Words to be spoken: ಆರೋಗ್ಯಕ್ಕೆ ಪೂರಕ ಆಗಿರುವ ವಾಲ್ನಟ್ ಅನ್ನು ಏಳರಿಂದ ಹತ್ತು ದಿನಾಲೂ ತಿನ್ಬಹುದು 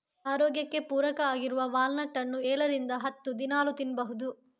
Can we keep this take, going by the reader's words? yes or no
yes